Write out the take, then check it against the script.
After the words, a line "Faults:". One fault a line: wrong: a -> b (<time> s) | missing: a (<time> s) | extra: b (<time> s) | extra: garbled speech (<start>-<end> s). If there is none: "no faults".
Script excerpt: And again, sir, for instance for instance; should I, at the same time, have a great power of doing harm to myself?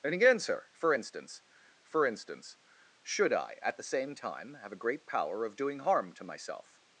And again, sir, for instance for instance; should I, at the same time, have a great power of doing harm to myself?
Faults:
no faults